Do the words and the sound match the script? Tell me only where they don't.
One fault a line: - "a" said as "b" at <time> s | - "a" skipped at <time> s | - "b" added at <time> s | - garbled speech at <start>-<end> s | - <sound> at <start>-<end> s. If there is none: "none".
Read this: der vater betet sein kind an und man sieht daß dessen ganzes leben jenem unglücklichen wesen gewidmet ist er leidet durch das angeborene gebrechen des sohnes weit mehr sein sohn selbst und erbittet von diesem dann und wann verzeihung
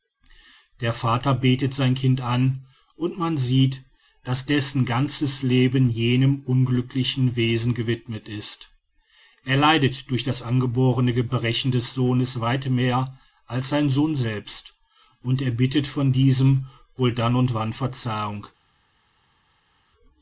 - "als" added at 13.4 s
- "wohl" added at 16.9 s